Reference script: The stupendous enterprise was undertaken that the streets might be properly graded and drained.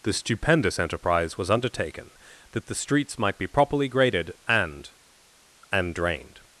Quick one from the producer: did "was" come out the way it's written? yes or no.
yes